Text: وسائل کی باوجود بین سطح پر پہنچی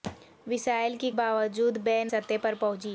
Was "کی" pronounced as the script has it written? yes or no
yes